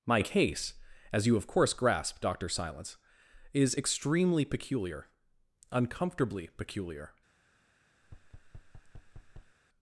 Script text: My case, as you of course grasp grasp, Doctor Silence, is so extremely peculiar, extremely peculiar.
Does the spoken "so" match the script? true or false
false